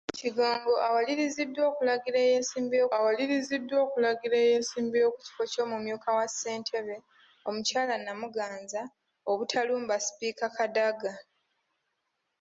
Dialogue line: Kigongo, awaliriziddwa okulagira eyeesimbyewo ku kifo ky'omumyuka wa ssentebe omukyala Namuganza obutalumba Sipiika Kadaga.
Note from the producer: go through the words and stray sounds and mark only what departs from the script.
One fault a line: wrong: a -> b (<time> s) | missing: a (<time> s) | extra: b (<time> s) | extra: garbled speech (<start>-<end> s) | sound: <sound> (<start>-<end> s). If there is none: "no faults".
extra: awaliriziddwa okulagira eyeesimbyewo (3.0 s)